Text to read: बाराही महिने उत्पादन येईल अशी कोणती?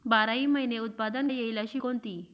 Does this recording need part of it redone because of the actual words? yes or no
no